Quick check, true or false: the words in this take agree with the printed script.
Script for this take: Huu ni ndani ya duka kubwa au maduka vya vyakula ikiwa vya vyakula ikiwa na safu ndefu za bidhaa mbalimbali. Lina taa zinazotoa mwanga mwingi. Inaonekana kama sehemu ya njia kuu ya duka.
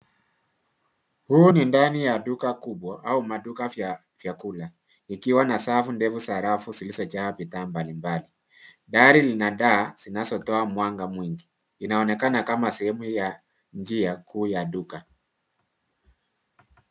false